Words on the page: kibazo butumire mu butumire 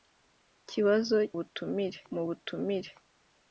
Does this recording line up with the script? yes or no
yes